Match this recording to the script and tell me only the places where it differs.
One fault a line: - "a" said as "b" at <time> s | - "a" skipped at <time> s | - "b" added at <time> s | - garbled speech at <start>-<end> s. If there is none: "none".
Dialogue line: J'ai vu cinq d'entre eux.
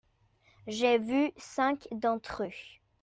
none